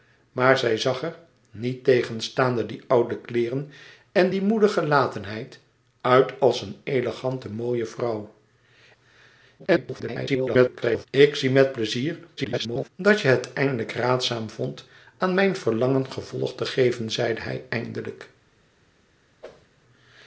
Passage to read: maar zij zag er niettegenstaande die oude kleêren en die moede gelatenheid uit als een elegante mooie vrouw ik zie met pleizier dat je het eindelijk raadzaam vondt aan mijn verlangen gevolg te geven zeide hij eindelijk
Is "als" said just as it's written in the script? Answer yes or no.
yes